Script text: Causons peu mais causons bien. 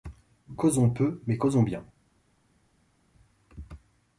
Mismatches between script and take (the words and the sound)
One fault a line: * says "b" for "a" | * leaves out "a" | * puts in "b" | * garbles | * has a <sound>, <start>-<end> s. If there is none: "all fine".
all fine